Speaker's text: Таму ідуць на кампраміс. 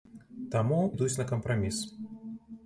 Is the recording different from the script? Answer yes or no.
no